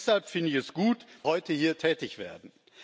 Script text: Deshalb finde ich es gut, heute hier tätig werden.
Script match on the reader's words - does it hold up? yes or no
yes